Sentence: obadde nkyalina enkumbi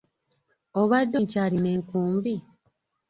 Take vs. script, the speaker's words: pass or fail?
pass